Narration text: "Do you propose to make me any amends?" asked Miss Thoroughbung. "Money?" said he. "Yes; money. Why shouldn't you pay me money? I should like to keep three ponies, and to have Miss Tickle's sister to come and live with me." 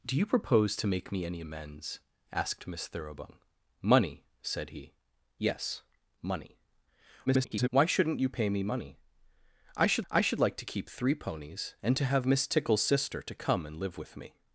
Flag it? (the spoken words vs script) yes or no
yes